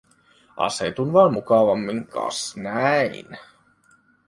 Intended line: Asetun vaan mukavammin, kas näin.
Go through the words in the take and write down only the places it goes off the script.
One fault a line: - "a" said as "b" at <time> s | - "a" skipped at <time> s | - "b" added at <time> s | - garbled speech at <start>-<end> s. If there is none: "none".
none